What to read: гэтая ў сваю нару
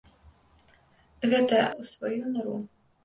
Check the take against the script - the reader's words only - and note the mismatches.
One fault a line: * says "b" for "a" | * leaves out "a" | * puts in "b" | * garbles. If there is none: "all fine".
all fine